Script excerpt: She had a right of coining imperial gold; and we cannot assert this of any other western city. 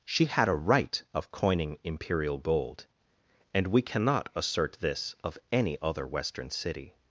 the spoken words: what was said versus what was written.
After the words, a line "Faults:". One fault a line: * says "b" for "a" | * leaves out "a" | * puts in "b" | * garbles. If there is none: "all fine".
She had a right of coining imperial gold; and we cannot assert this of any other western city.
Faults:
all fine